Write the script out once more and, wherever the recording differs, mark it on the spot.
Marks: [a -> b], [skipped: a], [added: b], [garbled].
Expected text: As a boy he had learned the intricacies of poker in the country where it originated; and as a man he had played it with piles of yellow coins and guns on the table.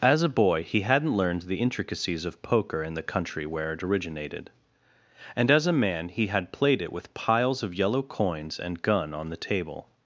As a boy he [had -> hadn't] learned the intricacies of poker in the country where it originated; and as a man he had played it with piles of yellow coins and [guns -> gun] on the table.